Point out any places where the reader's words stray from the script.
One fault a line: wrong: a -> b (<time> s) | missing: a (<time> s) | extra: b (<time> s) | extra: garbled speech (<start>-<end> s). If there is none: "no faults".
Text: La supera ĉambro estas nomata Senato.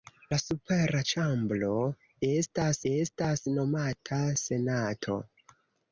extra: estas (2.9 s)